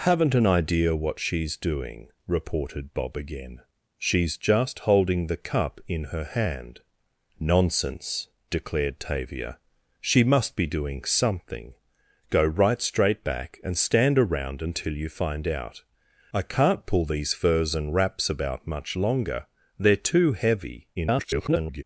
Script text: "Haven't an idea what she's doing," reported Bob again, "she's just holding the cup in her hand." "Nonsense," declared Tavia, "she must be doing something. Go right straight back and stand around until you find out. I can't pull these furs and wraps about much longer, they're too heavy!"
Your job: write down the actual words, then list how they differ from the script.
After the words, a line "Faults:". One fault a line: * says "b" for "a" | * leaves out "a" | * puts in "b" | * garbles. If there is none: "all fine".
"Haven't an idea what she's doing," reported Bob again, "she's just holding the cup in her hand." "Nonsense," declared Tavia, "she must be doing something. Go right straight back and stand around until you find out. I can't pull these furs and wraps about much longer, they're too heavy!" [garbled]
Faults:
* garbles